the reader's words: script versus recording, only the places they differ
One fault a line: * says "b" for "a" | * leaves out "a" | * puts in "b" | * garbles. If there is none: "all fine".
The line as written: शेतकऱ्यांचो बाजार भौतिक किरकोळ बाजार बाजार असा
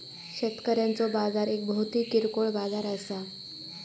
* puts in "एक"
* leaves out "बाजार"